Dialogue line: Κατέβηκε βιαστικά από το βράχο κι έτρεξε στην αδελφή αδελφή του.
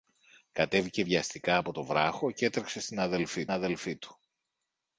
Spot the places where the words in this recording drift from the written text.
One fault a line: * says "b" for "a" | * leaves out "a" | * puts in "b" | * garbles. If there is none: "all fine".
all fine